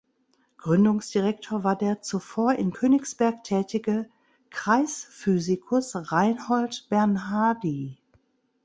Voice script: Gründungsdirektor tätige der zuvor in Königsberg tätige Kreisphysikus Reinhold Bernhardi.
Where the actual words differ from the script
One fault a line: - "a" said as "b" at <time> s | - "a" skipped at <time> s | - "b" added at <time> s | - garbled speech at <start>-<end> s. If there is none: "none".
- "tätige" said as "war" at 1.6 s